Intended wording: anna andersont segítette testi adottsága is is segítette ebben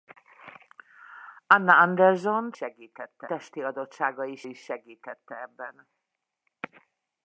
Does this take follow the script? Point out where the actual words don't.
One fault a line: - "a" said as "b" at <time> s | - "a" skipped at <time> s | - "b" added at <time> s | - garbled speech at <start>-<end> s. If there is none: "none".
none